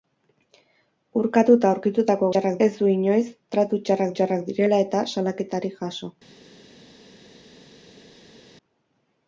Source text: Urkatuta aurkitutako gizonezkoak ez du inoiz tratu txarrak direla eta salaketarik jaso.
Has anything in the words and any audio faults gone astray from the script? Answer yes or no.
yes